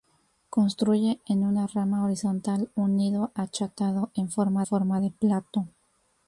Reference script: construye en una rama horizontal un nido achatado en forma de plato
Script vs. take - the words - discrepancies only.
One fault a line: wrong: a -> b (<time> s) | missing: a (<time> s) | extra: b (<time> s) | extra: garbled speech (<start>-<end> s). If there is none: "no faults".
extra: forma (4.7 s)